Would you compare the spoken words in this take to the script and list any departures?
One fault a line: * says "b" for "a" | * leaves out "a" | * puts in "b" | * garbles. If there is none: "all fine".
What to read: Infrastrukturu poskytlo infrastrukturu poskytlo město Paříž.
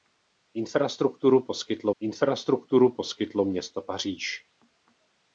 all fine